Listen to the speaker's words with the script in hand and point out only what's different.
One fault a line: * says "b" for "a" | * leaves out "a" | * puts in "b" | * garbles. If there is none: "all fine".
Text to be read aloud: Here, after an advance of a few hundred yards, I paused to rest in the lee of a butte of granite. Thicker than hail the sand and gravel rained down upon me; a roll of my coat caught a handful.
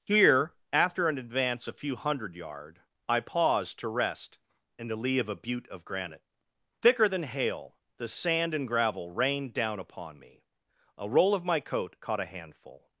* leaves out "of"
* says "yard" for "yards"